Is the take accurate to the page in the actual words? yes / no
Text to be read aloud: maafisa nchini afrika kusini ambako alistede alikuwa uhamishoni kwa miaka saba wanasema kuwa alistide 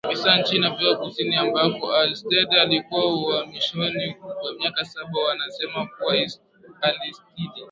yes